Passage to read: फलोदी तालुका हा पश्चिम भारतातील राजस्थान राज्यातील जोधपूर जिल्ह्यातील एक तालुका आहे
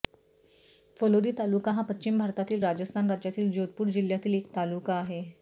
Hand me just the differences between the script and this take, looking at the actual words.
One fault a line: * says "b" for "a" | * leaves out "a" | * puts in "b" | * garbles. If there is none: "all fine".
all fine